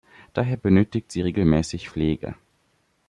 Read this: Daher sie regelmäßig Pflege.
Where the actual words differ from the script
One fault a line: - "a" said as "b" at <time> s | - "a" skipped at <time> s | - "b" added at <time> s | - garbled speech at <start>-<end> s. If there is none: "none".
- "benötigt" added at 0.6 s